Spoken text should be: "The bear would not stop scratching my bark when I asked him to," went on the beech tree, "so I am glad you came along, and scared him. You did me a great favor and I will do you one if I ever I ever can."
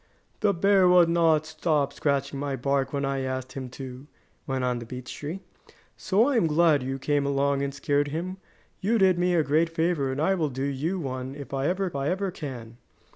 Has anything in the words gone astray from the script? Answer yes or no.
no